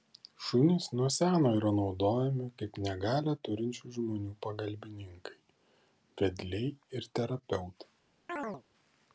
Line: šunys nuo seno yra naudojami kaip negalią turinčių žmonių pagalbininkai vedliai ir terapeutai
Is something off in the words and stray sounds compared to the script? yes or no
yes